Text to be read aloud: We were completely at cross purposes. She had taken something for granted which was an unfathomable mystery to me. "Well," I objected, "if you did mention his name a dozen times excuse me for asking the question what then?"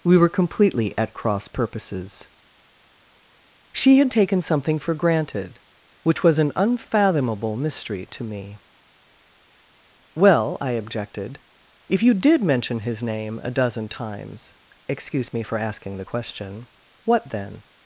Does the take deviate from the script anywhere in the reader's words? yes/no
no